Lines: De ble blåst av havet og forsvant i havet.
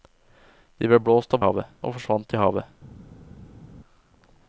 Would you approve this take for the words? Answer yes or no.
yes